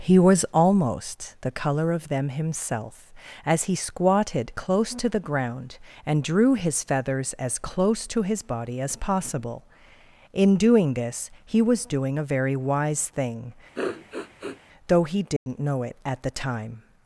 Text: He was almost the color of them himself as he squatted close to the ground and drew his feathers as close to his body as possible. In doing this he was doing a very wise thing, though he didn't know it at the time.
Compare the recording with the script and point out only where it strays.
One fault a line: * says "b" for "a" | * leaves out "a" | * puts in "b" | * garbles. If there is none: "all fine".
all fine